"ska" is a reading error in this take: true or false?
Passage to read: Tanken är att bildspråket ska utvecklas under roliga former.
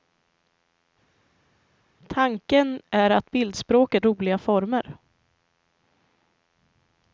true